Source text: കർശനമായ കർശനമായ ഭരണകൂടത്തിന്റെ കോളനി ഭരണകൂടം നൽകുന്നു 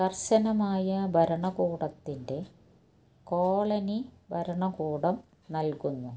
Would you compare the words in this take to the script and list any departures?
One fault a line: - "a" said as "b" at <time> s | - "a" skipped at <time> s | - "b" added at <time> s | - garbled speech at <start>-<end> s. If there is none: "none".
- "കർശനമായ" skipped at 1.1 s